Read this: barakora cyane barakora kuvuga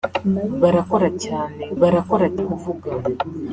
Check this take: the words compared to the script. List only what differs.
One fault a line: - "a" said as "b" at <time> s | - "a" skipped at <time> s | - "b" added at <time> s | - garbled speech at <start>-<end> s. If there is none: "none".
none